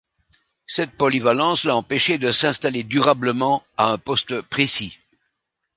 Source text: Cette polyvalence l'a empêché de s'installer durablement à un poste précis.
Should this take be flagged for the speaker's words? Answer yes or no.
no